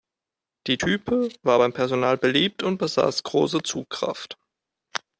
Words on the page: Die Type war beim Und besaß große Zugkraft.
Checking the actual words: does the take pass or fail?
fail